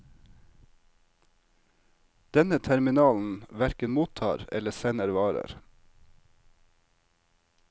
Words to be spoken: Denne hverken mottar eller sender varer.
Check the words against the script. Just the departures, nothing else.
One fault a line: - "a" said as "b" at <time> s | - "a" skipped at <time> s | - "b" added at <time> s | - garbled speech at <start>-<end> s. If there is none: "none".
- "terminalen" added at 2.6 s